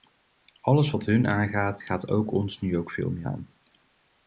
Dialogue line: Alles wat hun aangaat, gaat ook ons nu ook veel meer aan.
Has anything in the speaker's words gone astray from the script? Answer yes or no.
no